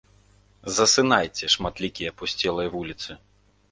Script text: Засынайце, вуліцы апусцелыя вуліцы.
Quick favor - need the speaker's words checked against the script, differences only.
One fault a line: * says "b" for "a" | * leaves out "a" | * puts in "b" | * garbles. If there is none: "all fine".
* says "шматлікія" for "вуліцы"